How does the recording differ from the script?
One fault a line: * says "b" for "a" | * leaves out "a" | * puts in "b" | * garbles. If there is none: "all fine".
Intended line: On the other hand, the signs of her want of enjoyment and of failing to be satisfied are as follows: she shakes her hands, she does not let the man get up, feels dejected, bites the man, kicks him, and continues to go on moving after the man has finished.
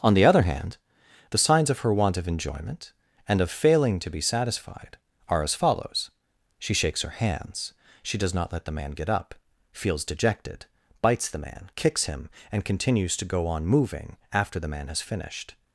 all fine